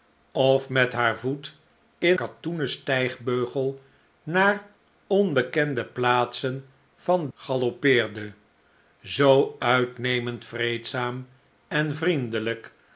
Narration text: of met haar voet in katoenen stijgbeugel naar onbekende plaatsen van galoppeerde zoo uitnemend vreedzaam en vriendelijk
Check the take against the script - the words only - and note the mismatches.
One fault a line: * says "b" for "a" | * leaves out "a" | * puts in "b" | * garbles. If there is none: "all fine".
all fine